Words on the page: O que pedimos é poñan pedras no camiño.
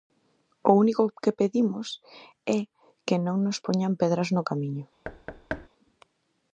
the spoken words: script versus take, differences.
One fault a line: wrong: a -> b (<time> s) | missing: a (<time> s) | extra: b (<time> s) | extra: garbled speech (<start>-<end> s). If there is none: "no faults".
extra: único (0.8 s)
extra: que non nos (3.1 s)